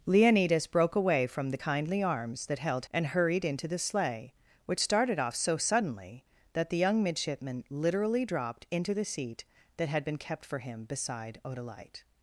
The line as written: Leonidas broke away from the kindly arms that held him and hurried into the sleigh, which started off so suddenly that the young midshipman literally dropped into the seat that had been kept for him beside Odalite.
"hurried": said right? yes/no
yes